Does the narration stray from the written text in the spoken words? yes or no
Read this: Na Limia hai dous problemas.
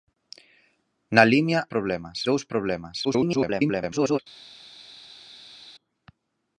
yes